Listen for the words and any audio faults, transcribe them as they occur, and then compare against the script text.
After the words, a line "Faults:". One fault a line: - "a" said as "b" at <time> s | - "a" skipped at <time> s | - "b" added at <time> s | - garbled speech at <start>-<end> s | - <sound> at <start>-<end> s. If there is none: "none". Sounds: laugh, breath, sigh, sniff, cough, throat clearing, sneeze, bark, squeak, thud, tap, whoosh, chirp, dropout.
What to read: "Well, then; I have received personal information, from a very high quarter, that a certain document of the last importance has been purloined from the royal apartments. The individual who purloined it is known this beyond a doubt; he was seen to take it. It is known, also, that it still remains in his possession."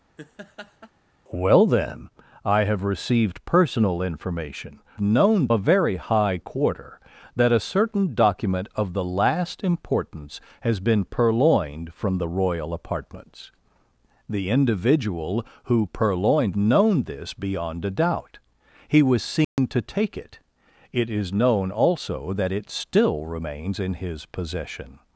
"Well, then; I have received personal information, known a very high quarter, that a certain document of the last importance has been purloined from the royal apartments. The individual who purloined known this beyond a doubt; he was seen to take it. It is known, also, that it still remains in his possession."
Faults:
- laugh at 0.2-0.9 s
- "from" said as "known" at 5.0 s
- "it is" skipped at 16.6 s
- dropout at 19.4-19.6 s